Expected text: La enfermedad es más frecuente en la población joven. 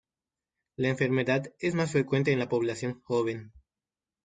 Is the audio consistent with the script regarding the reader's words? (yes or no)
yes